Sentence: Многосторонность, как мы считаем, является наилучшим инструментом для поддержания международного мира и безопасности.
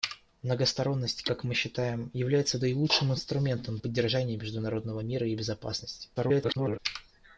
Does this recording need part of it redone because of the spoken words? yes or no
yes